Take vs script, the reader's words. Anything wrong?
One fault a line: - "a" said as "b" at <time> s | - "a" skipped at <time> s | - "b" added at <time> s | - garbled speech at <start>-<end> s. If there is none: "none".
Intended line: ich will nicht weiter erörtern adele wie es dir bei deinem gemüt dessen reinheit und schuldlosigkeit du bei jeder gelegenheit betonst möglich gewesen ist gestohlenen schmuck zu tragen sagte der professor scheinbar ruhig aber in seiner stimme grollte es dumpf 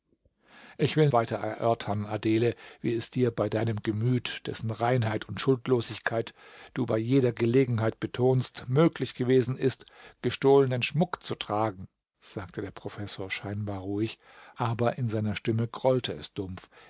- "nicht" skipped at 1.1 s